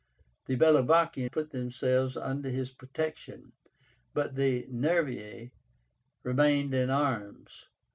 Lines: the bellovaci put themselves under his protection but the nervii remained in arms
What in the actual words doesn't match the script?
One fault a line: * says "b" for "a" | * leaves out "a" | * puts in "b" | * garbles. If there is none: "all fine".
all fine